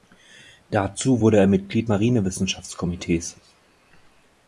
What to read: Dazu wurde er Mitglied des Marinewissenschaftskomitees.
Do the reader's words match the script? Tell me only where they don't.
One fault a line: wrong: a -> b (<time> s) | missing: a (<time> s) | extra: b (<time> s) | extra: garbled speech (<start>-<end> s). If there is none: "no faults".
missing: des (1.9 s)